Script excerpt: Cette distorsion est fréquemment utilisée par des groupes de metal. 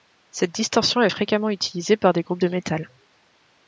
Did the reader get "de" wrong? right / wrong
right